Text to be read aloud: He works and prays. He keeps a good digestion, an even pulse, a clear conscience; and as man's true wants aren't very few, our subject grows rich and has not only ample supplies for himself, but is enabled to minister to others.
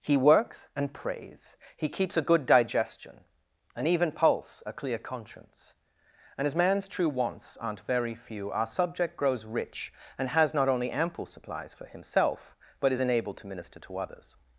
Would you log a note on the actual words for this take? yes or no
no